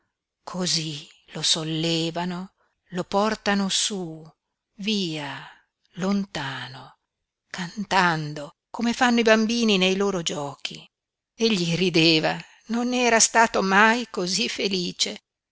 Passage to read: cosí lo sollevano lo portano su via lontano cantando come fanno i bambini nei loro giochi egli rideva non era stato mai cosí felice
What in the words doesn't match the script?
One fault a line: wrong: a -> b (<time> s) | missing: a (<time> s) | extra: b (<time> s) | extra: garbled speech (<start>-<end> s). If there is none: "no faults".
no faults